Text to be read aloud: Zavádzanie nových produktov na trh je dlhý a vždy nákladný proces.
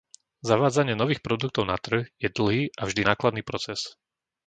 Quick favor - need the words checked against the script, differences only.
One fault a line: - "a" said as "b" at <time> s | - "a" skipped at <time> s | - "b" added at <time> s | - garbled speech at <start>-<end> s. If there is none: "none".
none